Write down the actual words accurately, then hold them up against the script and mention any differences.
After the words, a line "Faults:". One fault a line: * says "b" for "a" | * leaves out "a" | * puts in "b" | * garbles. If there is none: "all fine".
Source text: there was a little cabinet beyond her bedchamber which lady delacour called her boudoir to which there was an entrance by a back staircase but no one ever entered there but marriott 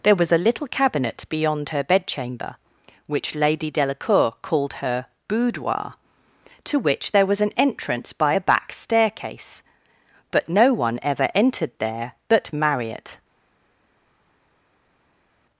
there was a little cabinet beyond her bedchamber which lady delacour called her boudoir to which there was an entrance by a back staircase but no one ever entered there but marriott
Faults:
all fine